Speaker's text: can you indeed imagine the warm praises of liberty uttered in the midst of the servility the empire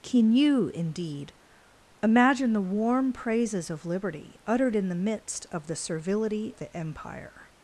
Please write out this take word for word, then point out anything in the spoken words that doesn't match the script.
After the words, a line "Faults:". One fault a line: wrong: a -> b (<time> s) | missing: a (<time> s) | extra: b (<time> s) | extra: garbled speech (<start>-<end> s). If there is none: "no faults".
can you indeed imagine the warm praises of liberty uttered in the midst of the servility the empire
Faults:
no faults